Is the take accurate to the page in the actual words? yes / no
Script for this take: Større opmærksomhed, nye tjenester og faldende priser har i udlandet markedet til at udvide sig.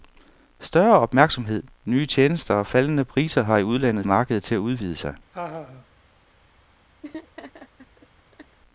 yes